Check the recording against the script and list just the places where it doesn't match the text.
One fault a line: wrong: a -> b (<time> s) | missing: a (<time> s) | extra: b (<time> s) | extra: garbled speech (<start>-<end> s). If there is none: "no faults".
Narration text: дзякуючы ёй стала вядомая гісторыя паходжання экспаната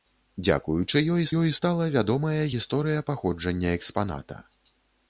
extra: ёй (1.4 s)